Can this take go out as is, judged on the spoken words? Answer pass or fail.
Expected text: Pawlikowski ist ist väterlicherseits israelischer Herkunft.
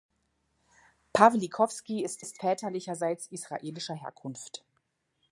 pass